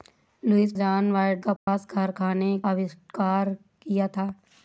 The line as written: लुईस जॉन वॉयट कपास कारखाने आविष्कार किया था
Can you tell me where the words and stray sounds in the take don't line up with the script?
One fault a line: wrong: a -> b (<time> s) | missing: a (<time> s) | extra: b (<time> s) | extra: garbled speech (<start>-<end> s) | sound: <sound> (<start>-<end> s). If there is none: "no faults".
sound: dropout (1.6-1.7 s)